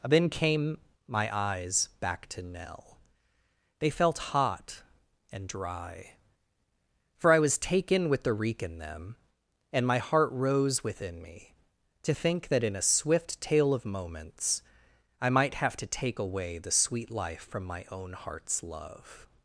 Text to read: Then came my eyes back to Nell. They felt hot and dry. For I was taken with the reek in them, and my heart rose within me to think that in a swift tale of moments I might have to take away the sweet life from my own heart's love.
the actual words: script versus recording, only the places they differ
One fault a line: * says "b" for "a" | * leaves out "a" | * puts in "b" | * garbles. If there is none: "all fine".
all fine